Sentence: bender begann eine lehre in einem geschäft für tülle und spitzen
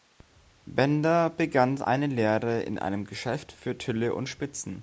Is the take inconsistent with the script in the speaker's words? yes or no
no